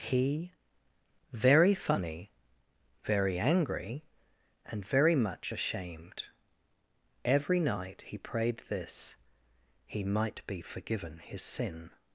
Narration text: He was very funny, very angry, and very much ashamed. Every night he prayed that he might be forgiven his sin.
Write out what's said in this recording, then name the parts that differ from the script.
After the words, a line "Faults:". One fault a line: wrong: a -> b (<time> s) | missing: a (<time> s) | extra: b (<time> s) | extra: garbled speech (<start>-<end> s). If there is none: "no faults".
He very funny, very angry, and very much ashamed. Every night he prayed this he might be forgiven his sin.
Faults:
missing: was (0.5 s)
wrong: that -> this (8.7 s)